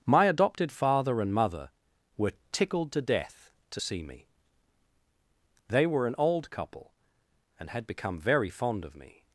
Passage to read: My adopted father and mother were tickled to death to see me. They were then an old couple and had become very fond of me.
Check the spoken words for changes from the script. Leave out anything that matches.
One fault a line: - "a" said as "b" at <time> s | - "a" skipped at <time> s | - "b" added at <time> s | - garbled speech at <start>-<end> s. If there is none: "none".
- "then" skipped at 6.1 s